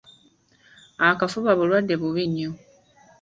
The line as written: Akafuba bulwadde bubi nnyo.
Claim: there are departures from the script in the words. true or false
false